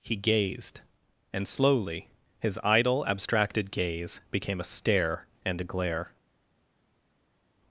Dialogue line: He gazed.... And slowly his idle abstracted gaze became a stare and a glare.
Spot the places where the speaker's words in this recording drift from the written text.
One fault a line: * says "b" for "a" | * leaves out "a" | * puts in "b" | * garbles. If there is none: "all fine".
all fine